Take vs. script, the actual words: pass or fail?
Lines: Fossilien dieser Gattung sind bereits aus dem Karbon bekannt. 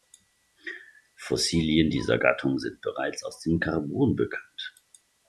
pass